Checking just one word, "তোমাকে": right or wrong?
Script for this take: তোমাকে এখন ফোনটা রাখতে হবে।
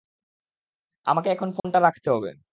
wrong